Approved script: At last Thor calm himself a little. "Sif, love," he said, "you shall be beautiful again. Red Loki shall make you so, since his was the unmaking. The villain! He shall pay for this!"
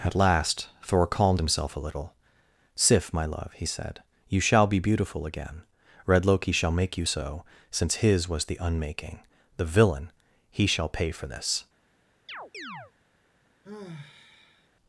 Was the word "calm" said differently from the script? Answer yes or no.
yes